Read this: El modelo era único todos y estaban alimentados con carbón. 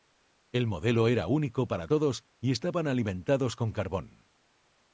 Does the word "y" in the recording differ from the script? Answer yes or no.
no